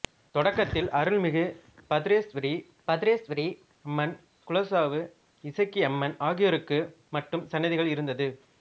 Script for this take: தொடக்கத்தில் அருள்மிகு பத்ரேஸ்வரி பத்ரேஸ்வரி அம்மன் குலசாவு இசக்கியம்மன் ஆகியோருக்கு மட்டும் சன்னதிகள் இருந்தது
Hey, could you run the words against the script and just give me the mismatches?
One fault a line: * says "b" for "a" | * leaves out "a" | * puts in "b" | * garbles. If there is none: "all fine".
all fine